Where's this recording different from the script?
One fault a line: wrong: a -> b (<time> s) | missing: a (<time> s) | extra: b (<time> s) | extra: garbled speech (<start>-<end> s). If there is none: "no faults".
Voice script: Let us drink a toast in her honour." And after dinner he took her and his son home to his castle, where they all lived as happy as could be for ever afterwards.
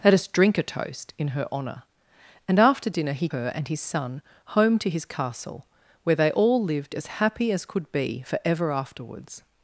missing: took (3.3 s)